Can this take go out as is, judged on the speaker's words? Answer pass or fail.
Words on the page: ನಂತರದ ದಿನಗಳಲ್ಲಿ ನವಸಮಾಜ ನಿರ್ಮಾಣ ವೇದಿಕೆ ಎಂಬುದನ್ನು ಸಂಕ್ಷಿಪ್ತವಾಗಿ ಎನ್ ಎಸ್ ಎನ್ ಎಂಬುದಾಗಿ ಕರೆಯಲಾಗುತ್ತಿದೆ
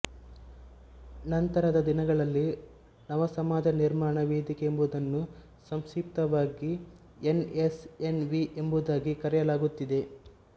fail